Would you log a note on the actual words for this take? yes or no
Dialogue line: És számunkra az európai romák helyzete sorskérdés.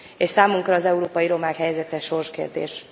no